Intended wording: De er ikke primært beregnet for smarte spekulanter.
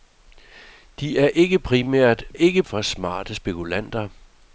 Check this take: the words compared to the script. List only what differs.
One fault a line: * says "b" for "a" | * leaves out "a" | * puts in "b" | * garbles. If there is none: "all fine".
* says "ikke" for "beregnet"